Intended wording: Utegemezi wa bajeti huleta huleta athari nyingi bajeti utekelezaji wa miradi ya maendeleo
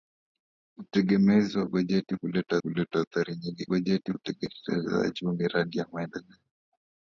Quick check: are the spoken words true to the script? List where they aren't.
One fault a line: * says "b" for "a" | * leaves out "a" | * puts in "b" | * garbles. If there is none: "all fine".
all fine